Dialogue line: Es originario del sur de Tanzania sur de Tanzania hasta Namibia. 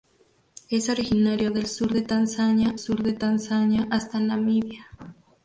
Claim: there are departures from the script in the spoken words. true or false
false